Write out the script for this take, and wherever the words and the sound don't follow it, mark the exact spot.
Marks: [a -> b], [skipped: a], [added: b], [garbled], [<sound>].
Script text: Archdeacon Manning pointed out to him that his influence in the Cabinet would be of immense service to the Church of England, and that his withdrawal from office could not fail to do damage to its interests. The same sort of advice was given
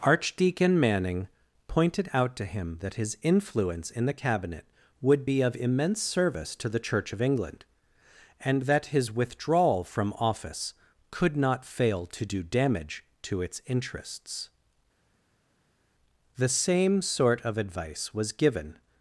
Archdeacon Manning pointed out to him that his influence in the Cabinet would be of immense service to the Church of England, and that his withdrawal from office could not fail to do damage to its interests. The same sort of advice was given